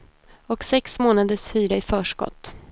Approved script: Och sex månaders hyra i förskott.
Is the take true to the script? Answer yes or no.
yes